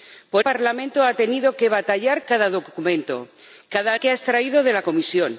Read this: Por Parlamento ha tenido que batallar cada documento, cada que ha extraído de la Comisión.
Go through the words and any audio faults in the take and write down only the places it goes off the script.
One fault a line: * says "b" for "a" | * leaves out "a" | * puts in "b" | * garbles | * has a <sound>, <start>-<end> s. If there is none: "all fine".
all fine